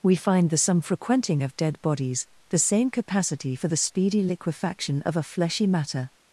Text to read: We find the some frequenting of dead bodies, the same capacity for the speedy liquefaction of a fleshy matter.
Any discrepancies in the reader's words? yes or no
no